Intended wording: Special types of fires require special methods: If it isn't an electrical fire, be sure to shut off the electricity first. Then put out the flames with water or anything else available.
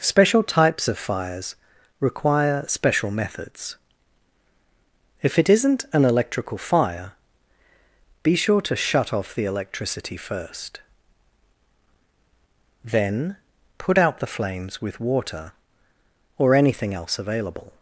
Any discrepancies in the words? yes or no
no